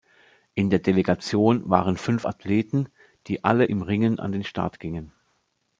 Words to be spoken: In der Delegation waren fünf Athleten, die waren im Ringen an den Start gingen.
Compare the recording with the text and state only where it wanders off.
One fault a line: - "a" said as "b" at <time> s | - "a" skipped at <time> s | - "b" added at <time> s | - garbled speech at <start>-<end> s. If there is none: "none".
- "waren" said as "alle" at 3.4 s